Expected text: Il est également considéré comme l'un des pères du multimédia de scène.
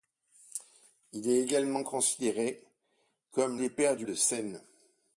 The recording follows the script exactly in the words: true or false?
false